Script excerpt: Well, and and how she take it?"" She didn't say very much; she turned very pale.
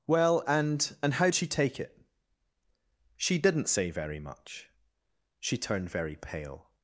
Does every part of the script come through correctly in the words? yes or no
yes